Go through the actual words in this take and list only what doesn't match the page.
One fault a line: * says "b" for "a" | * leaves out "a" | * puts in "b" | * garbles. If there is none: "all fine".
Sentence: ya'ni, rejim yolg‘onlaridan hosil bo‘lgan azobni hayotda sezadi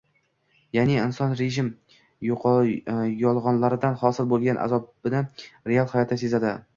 * puts in "inson"
* puts in "real"